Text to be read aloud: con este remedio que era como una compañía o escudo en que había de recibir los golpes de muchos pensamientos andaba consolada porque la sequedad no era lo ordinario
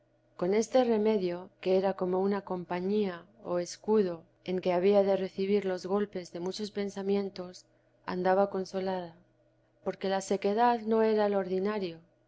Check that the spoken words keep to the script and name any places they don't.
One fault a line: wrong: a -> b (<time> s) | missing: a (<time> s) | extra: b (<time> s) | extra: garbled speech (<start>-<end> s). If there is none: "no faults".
no faults